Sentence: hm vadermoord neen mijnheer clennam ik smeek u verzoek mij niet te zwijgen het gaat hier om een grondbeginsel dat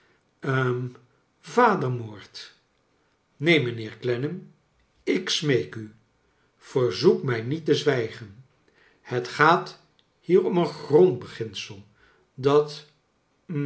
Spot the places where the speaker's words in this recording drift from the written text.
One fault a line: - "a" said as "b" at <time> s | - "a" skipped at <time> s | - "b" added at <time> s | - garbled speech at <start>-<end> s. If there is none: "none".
none